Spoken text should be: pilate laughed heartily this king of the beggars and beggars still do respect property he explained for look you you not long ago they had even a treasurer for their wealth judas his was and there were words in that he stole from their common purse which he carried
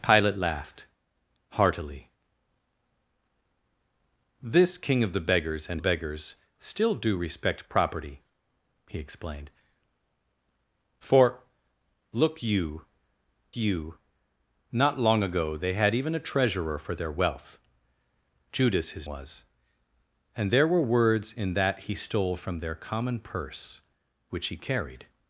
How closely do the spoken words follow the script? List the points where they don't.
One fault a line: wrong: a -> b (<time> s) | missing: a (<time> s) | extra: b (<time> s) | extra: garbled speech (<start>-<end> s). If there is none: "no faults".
no faults